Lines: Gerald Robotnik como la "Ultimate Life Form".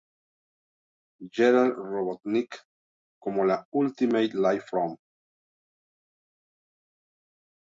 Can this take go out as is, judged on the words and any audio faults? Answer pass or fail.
pass